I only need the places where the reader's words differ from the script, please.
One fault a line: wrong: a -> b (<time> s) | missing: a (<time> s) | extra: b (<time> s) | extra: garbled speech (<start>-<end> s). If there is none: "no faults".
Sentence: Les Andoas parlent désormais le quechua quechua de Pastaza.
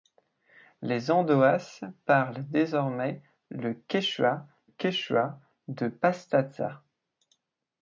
no faults